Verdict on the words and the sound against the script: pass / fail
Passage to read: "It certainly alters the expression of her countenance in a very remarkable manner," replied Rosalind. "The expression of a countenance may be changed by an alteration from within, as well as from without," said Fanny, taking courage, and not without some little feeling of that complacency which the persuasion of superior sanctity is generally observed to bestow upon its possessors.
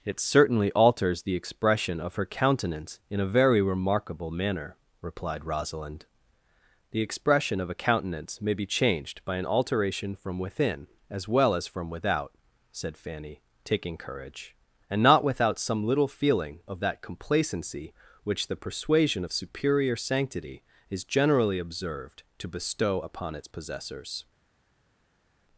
pass